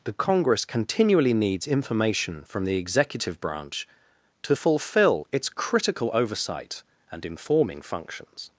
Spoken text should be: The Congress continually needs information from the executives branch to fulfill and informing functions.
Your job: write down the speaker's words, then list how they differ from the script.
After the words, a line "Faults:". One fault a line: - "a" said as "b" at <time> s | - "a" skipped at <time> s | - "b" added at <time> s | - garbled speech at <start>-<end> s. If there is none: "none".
The Congress continually needs information from the executive branch to fulfill its critical oversight and informing functions.
Faults:
- "executives" said as "executive" at 2.8 s
- "its critical oversight" added at 5.3 s